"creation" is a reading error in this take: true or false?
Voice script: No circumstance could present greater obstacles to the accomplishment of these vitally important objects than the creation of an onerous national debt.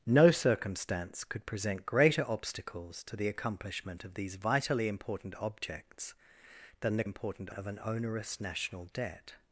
true